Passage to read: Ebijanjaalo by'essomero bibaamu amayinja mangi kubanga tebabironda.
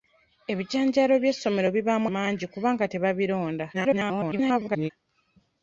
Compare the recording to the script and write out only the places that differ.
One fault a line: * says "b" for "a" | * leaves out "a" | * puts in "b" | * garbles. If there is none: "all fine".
* leaves out "amayinja"
* garbles